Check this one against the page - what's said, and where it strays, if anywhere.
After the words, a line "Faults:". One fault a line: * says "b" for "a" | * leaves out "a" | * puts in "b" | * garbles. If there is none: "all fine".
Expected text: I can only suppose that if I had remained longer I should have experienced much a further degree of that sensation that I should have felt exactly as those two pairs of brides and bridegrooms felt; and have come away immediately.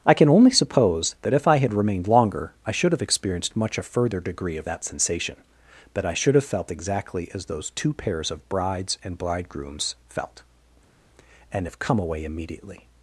I can only suppose that if I had remained longer I should have experienced much a further degree of that sensation that I should have felt exactly as those two pairs of brides and bridegrooms felt; and have come away immediately.
Faults:
all fine